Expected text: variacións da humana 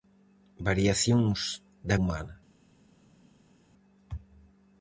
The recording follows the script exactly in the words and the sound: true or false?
true